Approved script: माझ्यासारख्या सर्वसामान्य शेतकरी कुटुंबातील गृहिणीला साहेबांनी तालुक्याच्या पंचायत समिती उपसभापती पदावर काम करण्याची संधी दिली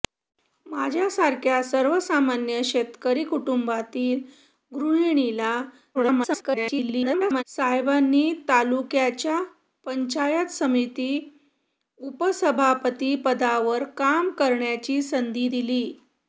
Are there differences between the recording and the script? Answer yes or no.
yes